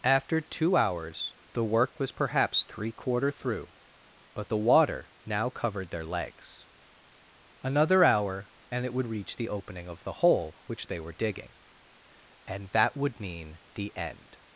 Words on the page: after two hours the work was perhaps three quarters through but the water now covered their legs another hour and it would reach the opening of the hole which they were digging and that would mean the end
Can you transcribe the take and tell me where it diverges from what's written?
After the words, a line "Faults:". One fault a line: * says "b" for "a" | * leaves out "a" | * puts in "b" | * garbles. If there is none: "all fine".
after two hours the work was perhaps three quarter through but the water now covered their legs another hour and it would reach the opening of the hole which they were digging and that would mean the end
Faults:
* says "quarter" for "quarters"